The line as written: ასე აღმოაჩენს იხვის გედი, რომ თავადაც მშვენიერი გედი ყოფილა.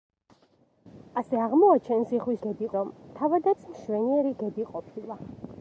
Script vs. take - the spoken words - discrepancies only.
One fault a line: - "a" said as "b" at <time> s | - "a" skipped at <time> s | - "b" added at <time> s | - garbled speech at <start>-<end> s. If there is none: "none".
none